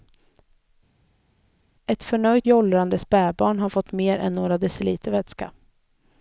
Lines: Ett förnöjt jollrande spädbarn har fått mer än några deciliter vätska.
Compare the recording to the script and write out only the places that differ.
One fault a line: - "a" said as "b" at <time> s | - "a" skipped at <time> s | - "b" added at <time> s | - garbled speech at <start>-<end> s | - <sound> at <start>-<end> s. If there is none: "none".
none